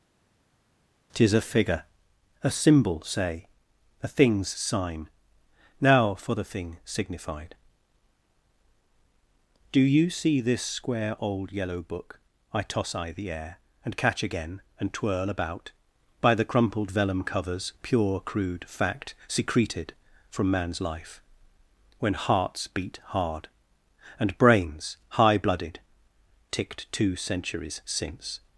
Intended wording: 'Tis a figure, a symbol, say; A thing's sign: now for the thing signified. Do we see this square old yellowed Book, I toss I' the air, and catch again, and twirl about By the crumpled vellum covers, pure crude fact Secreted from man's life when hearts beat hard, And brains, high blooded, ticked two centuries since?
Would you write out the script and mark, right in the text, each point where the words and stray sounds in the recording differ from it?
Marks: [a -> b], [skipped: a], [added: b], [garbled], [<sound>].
'Tis a figure, a symbol, say; A thing's sign: now for the thing signified. Do [we -> you] see this square old [yellowed -> yellow] Book, I toss I' the air, and catch again, and twirl about By the crumpled vellum covers, pure crude fact Secreted from man's life when hearts beat hard, And brains, high blooded, ticked two centuries since?